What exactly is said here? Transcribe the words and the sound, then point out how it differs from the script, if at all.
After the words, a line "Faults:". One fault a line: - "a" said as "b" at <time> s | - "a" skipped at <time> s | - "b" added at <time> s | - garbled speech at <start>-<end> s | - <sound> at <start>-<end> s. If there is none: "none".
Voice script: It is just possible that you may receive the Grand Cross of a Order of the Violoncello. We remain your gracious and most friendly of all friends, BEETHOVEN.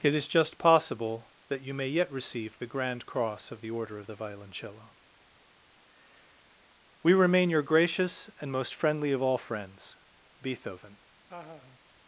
It is just possible that you may yet receive the Grand Cross of the Order of the Violoncello. We remain your gracious and most friendly of all friends, BEETHOVEN.
Faults:
- "yet" added at 1.9 s
- "a" said as "the" at 3.6 s
- laugh at 11.3-11.8 s